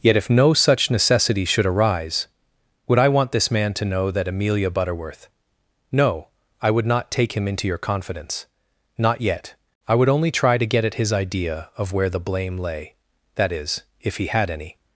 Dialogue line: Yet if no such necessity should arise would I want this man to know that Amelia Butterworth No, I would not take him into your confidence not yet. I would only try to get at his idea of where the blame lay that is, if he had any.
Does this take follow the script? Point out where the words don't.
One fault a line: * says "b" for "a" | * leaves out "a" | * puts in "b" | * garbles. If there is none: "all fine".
all fine